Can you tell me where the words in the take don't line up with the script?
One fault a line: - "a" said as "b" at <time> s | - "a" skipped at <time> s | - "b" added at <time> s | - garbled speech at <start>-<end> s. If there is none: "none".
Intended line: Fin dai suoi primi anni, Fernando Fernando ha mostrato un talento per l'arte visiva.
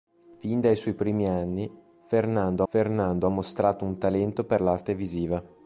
none